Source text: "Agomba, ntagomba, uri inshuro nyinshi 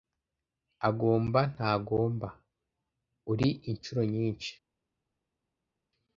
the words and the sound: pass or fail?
pass